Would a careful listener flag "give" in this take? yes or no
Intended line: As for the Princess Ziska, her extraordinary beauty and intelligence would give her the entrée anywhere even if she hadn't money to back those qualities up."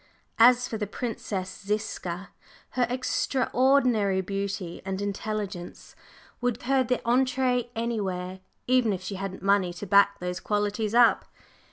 yes